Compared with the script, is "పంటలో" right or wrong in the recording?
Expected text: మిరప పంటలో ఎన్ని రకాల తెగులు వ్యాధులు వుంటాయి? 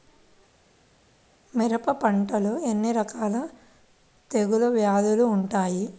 right